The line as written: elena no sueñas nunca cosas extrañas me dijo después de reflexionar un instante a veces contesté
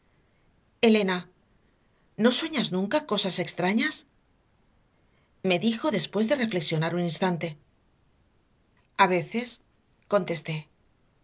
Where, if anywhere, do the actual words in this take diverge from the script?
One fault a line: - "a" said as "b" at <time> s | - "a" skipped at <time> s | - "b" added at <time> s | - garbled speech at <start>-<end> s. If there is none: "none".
none